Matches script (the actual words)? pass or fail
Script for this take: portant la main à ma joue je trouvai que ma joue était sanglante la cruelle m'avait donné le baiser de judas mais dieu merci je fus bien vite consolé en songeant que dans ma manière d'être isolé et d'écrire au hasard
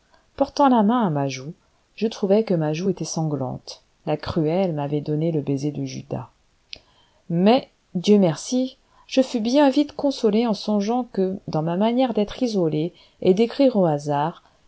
pass